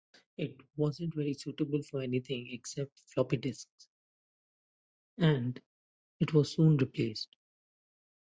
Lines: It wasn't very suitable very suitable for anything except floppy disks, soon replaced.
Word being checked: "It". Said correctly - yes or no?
yes